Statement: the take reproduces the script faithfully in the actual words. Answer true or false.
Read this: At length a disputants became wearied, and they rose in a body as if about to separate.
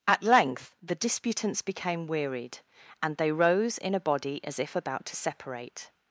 false